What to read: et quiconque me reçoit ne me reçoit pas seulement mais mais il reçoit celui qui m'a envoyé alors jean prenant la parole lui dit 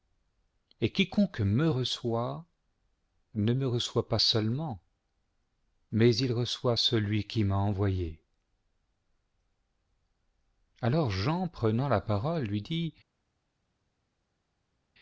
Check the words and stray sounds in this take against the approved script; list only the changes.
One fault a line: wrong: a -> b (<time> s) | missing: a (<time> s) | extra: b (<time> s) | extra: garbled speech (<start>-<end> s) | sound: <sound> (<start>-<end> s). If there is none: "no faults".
missing: mais (6.2 s)